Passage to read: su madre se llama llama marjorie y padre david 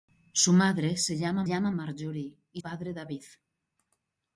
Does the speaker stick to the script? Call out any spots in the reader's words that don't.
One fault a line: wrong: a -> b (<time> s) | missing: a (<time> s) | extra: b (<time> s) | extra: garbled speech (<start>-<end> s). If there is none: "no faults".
no faults